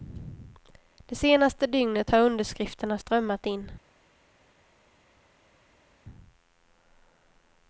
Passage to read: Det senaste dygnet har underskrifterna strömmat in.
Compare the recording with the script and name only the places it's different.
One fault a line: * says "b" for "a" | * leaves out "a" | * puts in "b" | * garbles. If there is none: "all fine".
all fine